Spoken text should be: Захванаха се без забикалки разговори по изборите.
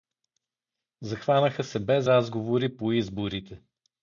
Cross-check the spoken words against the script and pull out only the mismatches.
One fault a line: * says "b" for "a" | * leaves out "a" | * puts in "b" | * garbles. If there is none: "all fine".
* leaves out "забикалки"